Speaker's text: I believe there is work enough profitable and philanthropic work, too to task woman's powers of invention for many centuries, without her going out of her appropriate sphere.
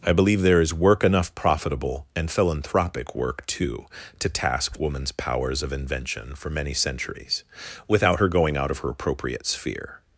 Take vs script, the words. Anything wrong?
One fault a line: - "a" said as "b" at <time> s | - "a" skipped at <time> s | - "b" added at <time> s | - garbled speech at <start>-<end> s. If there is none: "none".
none